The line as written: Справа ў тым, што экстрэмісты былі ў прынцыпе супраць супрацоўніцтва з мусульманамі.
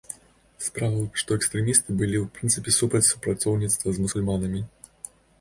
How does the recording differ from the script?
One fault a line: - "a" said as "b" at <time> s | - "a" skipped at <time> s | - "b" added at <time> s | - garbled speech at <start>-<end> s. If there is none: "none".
- "тым" skipped at 1.1 s